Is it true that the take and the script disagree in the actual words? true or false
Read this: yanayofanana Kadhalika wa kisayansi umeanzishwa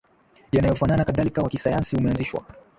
false